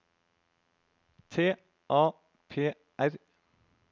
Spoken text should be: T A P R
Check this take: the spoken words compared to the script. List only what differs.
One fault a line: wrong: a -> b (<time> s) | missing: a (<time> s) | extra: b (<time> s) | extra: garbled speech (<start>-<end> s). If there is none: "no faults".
no faults